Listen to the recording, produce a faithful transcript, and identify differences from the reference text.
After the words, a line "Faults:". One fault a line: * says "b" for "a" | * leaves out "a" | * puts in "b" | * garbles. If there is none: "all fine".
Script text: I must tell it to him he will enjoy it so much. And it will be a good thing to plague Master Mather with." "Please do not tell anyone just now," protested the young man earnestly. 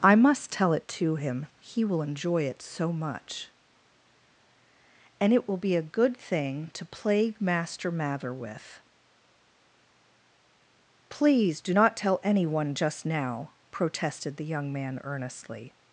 I must tell it to him he will enjoy it so much. And it will be a good thing to plague Master Mather with." "Please do not tell anyone just now," protested the young man earnestly.
Faults:
all fine